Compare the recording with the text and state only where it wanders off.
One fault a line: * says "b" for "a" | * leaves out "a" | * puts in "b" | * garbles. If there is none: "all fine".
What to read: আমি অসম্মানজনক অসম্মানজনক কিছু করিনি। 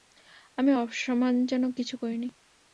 * leaves out "অসম্মানজনক"